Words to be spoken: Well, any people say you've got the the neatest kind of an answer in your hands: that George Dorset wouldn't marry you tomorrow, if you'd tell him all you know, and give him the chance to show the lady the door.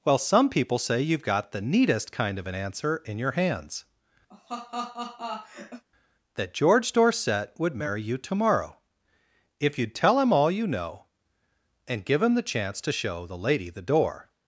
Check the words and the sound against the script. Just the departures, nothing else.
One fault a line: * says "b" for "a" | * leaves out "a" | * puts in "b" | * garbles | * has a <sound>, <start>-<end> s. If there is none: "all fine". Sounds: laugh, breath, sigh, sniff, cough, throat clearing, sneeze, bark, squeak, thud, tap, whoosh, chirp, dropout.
* says "some" for "any"
* leaves out "the"
* has a laugh, 4.3-5.8 s
* says "would" for "wouldn't"